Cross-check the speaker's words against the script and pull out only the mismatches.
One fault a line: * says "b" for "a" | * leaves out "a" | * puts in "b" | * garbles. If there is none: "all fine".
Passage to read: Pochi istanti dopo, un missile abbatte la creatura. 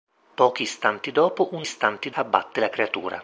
* says "istanti" for "missile"